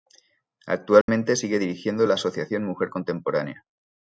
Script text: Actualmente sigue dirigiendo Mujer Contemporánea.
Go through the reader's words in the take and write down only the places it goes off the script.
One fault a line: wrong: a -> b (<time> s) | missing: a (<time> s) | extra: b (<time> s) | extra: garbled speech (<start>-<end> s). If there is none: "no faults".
extra: la Asociación (2.0 s)